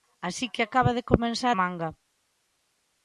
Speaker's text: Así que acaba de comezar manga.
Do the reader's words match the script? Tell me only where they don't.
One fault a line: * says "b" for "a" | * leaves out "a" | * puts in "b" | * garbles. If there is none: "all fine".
all fine